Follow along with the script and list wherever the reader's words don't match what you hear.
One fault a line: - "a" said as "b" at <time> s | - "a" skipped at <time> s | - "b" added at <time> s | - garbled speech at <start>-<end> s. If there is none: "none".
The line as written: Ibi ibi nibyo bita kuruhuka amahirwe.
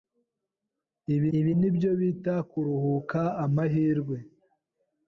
none